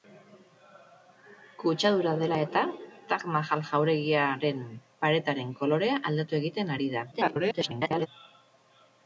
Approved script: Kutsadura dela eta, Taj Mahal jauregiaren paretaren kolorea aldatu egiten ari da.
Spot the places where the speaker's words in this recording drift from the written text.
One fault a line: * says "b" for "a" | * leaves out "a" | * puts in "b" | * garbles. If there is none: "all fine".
* garbles